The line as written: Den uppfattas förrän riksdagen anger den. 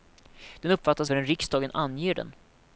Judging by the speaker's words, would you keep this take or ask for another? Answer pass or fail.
pass